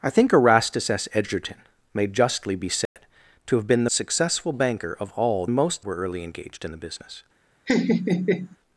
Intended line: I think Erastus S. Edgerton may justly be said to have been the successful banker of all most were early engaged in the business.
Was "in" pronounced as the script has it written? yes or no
yes